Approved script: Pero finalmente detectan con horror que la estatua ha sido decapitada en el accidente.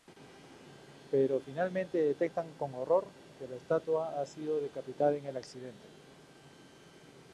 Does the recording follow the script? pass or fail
pass